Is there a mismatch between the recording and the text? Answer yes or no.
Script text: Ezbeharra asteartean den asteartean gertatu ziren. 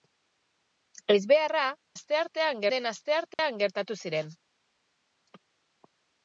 no